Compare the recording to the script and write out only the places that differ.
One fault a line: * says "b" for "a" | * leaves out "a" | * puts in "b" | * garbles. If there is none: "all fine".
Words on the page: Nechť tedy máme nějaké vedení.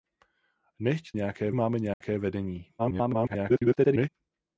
* says "nějaké" for "tedy"
* garbles